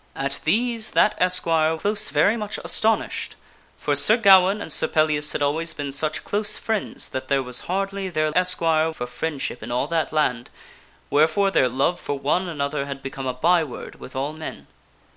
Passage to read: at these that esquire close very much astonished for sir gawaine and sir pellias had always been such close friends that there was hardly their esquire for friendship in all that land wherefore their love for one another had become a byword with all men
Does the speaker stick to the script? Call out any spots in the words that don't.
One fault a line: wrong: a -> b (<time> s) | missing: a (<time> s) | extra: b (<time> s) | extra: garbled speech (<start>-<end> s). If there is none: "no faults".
no faults